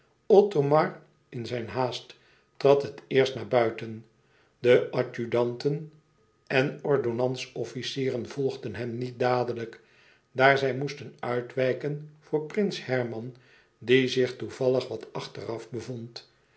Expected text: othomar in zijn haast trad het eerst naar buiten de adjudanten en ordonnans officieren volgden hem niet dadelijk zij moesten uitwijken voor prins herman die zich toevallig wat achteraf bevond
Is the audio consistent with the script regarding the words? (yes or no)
no